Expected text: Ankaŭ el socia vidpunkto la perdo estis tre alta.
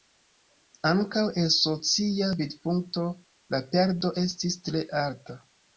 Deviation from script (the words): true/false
false